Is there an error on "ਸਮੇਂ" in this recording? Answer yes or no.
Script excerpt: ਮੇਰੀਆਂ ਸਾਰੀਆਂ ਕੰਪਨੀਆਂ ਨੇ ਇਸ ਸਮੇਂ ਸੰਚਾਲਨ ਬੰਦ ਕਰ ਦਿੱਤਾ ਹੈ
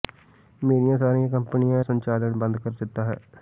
yes